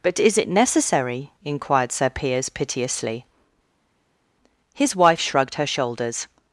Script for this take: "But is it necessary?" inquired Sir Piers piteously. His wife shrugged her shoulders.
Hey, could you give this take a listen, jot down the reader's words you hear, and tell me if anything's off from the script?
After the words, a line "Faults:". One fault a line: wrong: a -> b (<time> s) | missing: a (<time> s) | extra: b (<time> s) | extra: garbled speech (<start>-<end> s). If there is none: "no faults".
"But is it necessary?" inquired Sir Piers piteously. His wife shrugged her shoulders.
Faults:
no faults